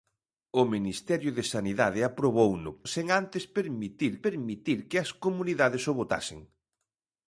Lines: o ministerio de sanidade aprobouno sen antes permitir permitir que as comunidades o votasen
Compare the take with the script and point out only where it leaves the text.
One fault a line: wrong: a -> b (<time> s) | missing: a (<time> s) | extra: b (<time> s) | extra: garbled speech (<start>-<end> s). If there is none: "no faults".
no faults